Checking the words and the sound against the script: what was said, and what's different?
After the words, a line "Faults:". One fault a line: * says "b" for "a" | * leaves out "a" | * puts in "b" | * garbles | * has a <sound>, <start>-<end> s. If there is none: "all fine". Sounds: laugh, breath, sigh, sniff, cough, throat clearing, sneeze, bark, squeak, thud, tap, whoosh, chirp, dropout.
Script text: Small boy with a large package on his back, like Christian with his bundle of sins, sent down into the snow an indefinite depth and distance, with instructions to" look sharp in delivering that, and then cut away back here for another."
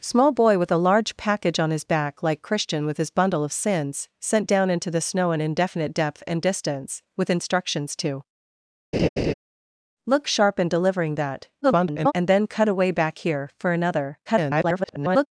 Small boy with a large package on his back, like Christian with his bundle of sins, sent down into the snow an indefinite depth and distance, with instructions to" look sharp in delivering that, [garbled] and then cut away back here for another." [garbled]
Faults:
* has a laugh, 8.9-9.3 s
* garbles
* garbles